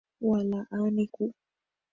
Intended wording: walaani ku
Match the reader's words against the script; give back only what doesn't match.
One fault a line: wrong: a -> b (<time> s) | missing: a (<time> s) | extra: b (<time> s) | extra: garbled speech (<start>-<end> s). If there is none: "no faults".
no faults